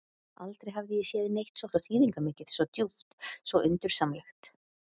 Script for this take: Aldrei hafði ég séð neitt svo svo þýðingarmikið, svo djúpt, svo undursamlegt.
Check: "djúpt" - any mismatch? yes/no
no